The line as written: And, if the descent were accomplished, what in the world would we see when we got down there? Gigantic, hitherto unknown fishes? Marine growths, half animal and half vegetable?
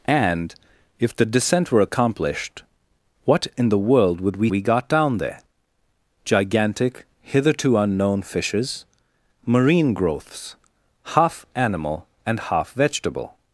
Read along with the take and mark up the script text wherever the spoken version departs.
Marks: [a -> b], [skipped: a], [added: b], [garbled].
And, if the descent were accomplished, what in the world would we [skipped: see when] we got down there? Gigantic, hitherto unknown fishes? Marine growths, half animal and half vegetable?